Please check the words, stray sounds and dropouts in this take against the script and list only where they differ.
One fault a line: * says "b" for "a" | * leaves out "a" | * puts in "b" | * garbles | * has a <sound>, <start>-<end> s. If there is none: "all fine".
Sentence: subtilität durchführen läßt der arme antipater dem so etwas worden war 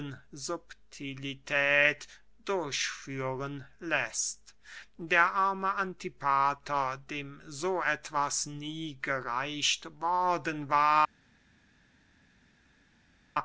* puts in "nie gereicht"